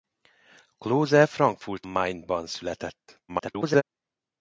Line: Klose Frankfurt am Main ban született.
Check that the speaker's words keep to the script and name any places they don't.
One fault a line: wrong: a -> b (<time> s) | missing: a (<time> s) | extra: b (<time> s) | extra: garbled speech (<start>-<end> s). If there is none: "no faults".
missing: am (1.9 s)
extra: garbled speech (3.3-3.8 s)